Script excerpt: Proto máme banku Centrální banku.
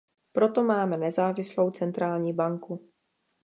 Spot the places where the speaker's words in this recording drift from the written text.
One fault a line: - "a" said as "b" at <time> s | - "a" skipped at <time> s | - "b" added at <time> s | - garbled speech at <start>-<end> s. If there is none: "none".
- "banku" said as "nezávislou" at 1.0 s